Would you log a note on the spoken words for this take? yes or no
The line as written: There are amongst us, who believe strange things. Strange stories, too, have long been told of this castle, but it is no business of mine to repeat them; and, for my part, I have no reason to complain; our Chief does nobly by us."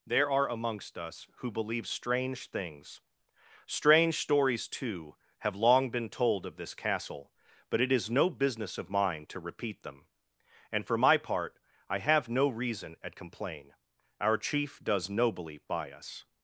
yes